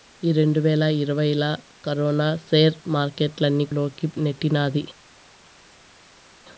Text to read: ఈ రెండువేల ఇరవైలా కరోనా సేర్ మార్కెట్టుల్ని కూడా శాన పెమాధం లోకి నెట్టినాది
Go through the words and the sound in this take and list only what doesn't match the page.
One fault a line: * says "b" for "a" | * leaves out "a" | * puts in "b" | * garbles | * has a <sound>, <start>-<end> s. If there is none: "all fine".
* leaves out "కూడా శాన పెమాధం"